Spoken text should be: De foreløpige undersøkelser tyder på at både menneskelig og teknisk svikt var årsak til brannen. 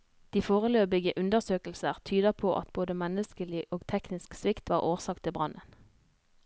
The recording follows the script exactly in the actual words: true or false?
true